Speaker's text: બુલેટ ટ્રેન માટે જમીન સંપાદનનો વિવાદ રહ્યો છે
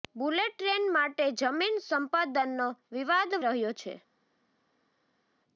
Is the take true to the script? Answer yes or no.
yes